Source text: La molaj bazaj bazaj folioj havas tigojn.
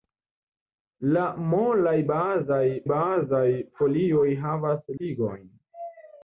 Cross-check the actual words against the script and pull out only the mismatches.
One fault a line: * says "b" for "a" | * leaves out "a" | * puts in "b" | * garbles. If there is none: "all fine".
all fine